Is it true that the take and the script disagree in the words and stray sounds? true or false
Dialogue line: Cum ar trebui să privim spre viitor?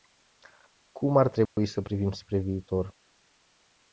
true